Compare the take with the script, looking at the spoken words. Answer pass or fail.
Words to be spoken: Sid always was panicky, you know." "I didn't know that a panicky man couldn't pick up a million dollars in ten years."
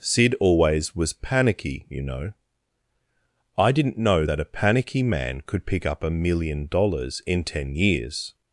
fail